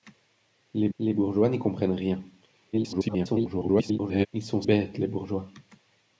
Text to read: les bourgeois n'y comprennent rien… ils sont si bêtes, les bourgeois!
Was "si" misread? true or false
true